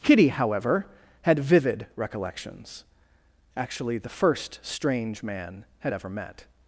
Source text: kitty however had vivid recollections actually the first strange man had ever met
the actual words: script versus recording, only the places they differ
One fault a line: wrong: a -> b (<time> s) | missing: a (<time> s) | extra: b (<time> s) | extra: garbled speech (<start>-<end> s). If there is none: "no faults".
no faults